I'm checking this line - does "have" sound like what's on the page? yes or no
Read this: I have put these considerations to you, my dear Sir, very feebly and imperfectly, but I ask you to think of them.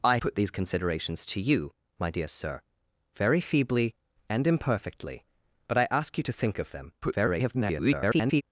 no